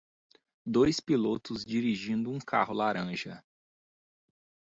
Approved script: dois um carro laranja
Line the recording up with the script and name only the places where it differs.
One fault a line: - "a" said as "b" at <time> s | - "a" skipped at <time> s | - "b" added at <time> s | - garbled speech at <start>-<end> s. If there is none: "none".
- "pilotos dirigindo" added at 1.0 s